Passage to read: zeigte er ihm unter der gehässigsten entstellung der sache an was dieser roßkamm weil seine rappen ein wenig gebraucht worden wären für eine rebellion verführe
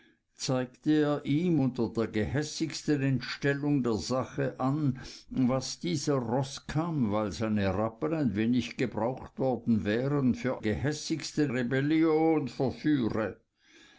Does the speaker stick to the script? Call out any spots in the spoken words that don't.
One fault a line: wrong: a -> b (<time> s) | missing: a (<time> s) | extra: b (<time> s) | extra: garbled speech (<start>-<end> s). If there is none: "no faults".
wrong: eine -> gehässigsten (10.6 s)